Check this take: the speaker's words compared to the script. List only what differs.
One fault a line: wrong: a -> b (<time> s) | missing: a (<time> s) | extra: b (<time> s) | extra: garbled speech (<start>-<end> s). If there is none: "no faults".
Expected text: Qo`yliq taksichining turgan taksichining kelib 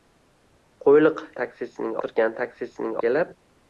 no faults